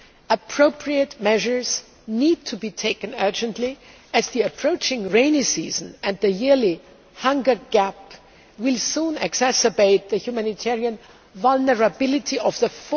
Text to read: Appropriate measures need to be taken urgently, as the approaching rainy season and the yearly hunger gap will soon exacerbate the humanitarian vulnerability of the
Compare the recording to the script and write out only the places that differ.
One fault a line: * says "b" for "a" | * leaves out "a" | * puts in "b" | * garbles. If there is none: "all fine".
all fine